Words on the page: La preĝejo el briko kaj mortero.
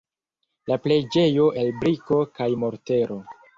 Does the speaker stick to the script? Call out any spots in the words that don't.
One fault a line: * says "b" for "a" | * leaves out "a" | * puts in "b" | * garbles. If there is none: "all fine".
all fine